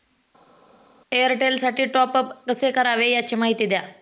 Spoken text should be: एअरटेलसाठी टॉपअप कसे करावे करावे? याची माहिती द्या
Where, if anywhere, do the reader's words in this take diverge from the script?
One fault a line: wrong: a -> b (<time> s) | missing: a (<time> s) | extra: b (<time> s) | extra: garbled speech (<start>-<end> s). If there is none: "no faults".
missing: करावे (3.1 s)